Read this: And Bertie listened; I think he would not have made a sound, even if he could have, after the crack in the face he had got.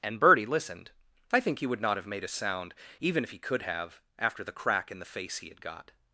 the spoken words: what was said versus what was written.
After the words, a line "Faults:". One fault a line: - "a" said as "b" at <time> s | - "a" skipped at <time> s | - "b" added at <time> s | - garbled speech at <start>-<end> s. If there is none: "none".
And Bertie listened; I think he would not have made a sound, even if he could have, after the crack in the face he had got.
Faults:
none